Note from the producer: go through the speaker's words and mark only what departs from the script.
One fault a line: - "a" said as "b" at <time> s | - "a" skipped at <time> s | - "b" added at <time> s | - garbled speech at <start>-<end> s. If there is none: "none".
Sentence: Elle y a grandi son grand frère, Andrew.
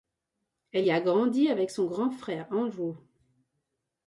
- "avec" added at 1.5 s